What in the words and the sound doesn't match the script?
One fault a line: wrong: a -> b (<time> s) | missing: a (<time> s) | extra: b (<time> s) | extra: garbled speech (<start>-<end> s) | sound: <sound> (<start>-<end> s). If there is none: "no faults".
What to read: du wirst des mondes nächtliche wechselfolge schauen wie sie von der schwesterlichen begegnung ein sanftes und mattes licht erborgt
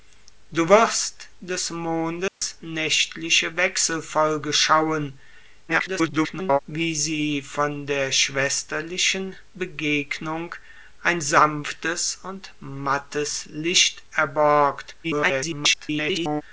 sound: dropout (2.3-2.4 s)
extra: garbled speech (5.7-6.6 s)
extra: garbled speech (15.0-16.4 s)